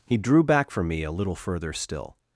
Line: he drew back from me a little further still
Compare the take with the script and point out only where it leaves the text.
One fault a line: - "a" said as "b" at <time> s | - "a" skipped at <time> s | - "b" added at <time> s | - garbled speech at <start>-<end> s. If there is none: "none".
none